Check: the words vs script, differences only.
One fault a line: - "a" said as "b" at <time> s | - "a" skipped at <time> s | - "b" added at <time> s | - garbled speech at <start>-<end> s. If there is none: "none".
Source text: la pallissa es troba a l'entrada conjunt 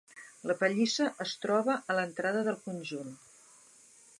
- "del" added at 2.5 s